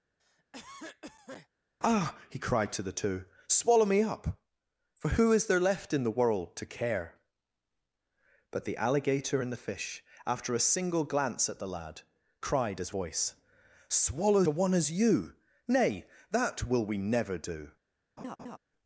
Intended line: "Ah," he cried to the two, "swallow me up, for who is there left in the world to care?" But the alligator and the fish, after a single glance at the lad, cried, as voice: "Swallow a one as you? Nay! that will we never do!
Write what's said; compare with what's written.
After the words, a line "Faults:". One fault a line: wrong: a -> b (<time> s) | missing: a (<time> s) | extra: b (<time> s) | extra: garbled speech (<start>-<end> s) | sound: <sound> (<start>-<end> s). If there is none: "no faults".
"Ah," he cried to the two, "swallow me up, for who is there left in the world to care?" But the alligator and the fish, after a single glance at the lad, cried, as voice: "Swallow a one as you? Nay! that will we never do!
Faults:
sound: cough (0.2-1.5 s)
sound: laugh (18.2-18.6 s)